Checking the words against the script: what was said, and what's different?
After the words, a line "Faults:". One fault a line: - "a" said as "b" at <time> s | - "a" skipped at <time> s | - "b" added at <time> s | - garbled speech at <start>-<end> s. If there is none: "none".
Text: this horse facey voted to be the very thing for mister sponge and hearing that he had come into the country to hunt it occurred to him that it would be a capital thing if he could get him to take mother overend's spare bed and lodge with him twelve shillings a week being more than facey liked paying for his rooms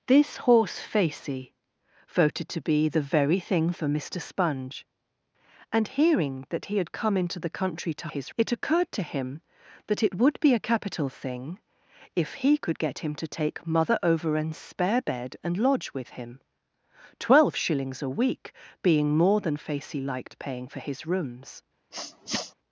this horse facey voted to be the very thing for mister sponge and hearing that he had come into the country to his it occurred to him that it would be a capital thing if he could get him to take mother overend's spare bed and lodge with him twelve shillings a week being more than facey liked paying for his rooms
Faults:
- "hunt" said as "his" at 8.1 s